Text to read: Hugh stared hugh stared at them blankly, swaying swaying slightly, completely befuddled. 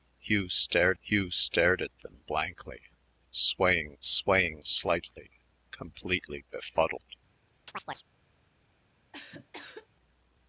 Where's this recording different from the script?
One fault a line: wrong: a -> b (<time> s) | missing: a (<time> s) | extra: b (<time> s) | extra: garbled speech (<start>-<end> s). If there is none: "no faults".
no faults